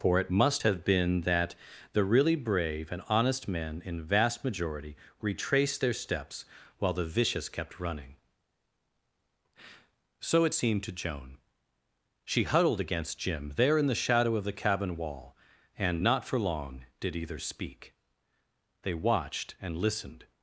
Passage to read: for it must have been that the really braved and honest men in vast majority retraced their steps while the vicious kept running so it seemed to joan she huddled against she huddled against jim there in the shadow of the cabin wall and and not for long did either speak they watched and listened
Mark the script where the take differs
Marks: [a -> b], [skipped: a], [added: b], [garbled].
for it must have been that the really [braved -> brave] and honest men in vast majority retraced their steps while the vicious kept running so it seemed to joan she huddled against [skipped: she huddled against] jim there in the shadow of the cabin wall and [skipped: and] not for long did either speak they watched and listened